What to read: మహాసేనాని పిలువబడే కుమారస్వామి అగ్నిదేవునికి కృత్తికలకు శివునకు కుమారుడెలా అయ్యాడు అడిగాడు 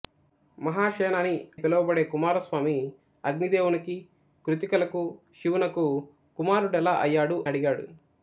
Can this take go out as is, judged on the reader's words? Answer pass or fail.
pass